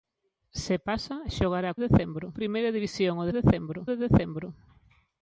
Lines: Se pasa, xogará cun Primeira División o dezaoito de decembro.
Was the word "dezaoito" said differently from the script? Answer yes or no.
yes